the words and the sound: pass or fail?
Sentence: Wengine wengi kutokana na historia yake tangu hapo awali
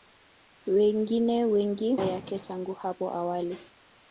fail